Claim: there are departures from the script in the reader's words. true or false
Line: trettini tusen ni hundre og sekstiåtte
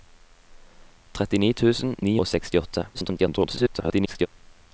true